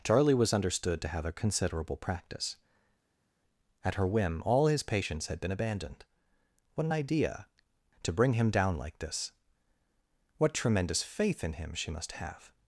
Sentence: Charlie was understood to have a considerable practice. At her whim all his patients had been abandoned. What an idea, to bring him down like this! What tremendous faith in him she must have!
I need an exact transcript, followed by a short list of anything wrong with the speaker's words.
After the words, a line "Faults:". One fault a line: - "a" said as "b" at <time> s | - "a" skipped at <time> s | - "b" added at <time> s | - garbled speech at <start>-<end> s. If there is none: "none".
Charlie was understood to have a considerable practice. At her whim all his patients had been abandoned. What an idea, to bring him down like this! What tremendous faith in him she must have!
Faults:
none